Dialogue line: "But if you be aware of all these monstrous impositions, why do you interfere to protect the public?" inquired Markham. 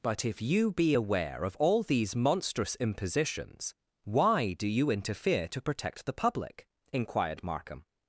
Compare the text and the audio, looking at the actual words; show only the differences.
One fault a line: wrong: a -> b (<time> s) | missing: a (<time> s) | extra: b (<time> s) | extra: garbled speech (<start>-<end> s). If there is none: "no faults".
no faults